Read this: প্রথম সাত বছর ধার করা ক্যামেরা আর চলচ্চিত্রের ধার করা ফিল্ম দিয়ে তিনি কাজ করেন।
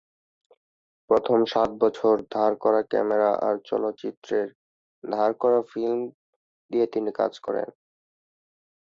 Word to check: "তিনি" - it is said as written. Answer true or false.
true